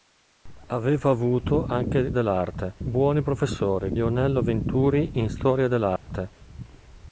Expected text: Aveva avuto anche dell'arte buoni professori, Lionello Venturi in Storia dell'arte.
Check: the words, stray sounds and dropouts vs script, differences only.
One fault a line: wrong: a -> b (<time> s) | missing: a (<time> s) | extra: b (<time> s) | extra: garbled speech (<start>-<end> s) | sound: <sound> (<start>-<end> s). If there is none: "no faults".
sound: dropout (6.0-6.1 s)